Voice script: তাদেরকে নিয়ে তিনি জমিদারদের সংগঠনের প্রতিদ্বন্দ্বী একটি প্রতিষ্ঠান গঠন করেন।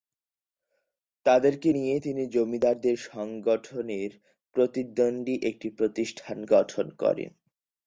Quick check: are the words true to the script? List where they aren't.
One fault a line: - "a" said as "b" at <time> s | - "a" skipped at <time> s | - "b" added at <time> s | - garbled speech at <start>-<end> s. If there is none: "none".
none